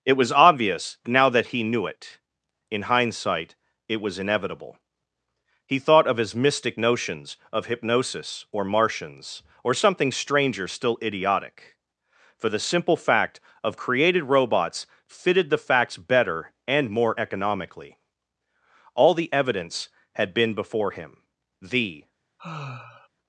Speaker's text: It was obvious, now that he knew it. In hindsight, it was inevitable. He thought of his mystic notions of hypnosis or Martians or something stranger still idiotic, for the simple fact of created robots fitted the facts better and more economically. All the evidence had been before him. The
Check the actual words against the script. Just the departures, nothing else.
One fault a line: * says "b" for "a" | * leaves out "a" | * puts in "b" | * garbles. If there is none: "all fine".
all fine